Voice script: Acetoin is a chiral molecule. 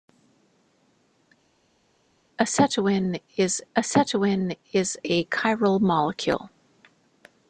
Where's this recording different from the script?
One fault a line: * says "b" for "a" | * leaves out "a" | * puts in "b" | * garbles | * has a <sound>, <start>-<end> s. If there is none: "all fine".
* puts in "acetoin is"